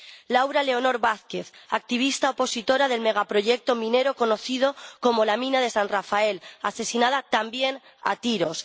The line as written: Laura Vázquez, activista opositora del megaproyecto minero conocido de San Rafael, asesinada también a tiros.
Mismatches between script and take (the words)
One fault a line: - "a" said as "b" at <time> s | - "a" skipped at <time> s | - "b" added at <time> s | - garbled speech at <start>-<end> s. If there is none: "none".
- "Leonor" added at 0.6 s
- "como la Mina" added at 5.0 s